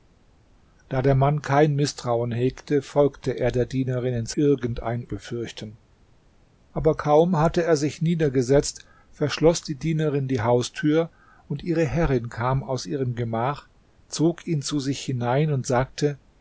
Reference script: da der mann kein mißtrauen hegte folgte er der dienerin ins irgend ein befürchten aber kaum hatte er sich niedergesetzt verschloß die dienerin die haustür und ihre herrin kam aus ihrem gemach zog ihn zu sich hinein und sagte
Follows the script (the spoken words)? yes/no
yes